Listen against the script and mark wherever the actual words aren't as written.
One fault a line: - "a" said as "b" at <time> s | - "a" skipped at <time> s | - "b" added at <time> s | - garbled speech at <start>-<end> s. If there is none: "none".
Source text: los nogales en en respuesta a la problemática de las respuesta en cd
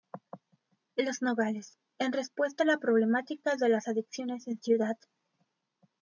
- "en" skipped at 2.1 s
- "respuesta" said as "adicciones" at 3.9 s